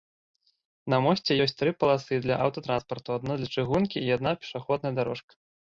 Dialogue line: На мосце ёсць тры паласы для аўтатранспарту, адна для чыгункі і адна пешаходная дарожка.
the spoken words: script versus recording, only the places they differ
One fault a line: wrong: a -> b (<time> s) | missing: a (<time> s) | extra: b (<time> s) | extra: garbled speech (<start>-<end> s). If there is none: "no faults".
no faults